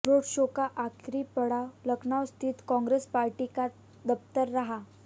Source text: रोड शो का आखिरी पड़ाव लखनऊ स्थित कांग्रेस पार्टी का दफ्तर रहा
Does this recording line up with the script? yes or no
yes